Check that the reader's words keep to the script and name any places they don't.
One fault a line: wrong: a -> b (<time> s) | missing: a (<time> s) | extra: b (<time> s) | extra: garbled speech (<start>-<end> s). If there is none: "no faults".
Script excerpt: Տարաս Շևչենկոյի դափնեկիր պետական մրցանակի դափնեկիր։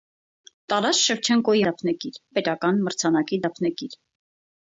no faults